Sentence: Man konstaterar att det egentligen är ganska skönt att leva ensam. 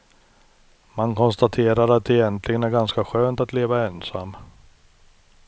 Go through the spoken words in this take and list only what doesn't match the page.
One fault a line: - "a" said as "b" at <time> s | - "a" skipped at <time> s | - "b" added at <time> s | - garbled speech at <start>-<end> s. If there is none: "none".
none